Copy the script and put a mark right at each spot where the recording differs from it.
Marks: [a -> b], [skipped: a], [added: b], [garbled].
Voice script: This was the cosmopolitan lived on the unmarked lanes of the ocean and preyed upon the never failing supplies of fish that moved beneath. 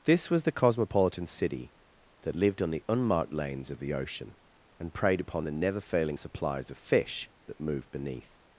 This was the cosmopolitan [added: city that] lived on the unmarked lanes of the ocean and preyed upon the never failing supplies of fish that moved beneath.